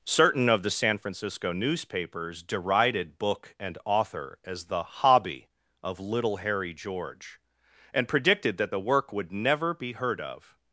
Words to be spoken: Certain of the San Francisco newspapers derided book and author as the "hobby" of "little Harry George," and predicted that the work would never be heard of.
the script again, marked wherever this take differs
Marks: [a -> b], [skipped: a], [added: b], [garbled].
Certain of the San Francisco newspapers derided book and author as the "hobby" of "little Harry George," and predicted that the work would never be heard of.